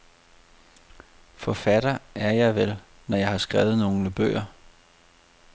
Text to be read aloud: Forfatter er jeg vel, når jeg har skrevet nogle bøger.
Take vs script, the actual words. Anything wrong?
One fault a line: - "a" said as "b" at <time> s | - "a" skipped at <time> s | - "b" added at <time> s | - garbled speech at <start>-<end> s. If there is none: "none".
none